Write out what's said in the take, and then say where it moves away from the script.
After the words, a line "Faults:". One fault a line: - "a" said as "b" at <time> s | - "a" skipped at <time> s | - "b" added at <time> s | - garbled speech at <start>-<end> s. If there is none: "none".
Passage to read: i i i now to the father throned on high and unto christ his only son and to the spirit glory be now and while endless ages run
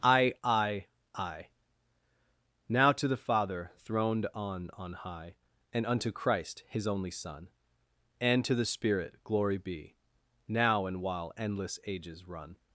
i i i now to the father throned on on high and unto christ his only son and to the spirit glory be now and while endless ages run
Faults:
- "on" added at 4.7 s